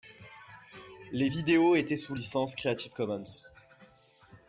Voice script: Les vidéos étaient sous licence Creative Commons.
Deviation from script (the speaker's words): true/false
false